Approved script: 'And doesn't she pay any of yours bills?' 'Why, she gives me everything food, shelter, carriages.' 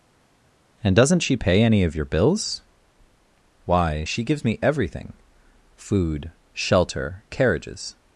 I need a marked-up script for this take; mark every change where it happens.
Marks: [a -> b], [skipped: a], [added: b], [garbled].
'And doesn't she pay any of [yours -> your] bills?' 'Why, she gives me everything food, shelter, carriages.'